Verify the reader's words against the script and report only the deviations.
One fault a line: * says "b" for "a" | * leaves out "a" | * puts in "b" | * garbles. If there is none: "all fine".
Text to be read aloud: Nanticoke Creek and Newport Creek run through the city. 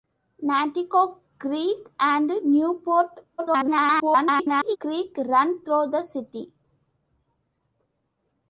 * garbles